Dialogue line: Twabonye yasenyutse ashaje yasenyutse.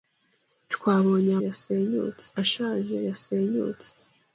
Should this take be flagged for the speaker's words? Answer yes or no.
no